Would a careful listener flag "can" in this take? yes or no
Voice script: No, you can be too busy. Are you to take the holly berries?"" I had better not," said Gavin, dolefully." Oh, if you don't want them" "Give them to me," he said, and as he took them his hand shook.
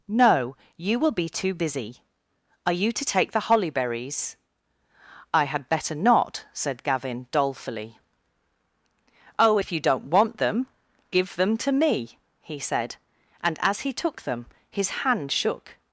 yes